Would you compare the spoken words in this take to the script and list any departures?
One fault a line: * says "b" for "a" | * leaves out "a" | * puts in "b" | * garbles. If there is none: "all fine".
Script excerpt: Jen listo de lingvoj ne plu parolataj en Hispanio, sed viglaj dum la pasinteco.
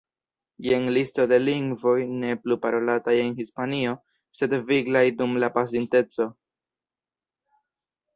all fine